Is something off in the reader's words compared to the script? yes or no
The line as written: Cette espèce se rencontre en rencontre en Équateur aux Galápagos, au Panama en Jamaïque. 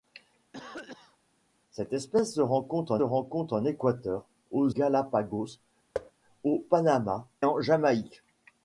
no